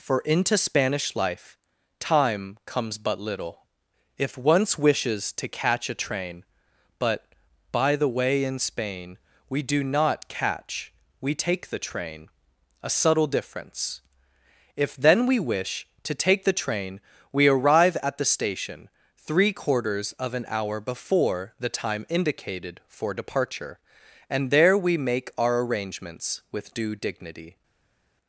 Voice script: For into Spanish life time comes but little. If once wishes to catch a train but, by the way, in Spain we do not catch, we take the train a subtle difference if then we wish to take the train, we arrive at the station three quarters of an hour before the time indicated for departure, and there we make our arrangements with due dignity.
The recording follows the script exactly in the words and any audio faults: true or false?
true